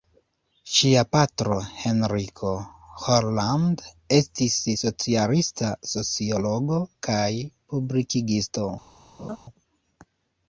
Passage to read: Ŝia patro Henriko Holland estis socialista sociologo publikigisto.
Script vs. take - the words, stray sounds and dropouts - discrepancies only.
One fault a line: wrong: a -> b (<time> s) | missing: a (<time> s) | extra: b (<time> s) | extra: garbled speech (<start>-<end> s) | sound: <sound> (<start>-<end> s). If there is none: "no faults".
extra: kaj (7.1 s)
sound: laugh (9.2-9.4 s)